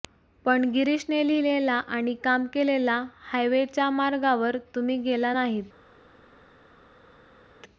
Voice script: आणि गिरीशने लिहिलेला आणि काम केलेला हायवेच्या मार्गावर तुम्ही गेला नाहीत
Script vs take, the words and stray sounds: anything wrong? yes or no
yes